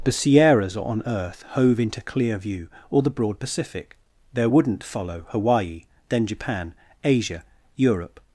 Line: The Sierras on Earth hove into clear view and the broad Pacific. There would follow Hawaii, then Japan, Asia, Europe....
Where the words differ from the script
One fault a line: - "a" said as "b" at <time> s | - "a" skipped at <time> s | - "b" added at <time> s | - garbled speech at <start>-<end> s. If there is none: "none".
- "and" said as "or" at 2.9 s
- "would" said as "wouldn't" at 4.5 s